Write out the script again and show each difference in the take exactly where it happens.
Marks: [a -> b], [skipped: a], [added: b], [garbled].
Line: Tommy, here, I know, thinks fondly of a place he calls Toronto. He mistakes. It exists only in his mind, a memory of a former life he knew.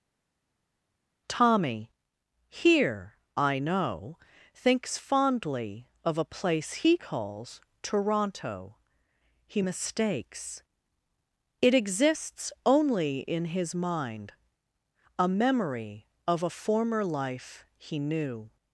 Tommy, here, I know, thinks fondly of a place he calls Toronto. He mistakes. It exists only in his mind, a memory of a former life he knew.